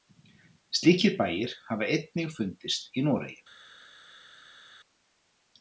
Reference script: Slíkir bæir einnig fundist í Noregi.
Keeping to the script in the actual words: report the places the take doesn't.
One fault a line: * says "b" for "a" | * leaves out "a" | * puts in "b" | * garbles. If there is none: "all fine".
* puts in "hafa"